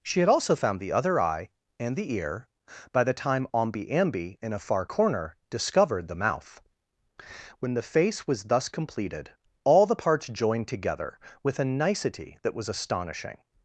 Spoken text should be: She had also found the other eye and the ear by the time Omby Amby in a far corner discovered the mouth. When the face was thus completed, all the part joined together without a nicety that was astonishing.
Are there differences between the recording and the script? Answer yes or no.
yes